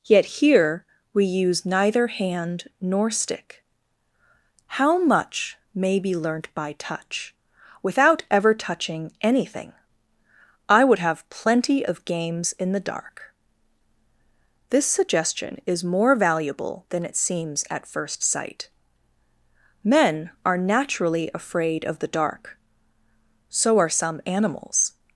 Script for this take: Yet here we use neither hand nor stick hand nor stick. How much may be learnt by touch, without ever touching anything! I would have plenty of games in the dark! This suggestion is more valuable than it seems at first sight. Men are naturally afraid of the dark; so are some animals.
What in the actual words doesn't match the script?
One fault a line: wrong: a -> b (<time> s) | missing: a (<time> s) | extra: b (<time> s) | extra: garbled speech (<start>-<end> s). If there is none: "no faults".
missing: hand nor stick (3.6 s)